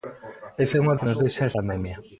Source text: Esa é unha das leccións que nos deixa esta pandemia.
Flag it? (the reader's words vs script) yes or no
yes